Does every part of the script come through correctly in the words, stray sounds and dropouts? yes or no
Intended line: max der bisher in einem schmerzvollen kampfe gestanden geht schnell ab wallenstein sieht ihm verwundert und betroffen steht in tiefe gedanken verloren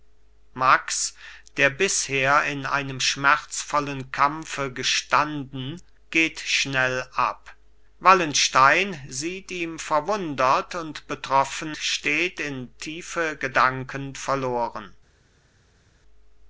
yes